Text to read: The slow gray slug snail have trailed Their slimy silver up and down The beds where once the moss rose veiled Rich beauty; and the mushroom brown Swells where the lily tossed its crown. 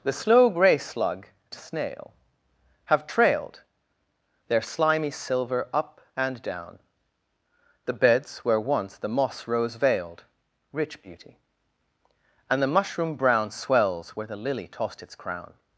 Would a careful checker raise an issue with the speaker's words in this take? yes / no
no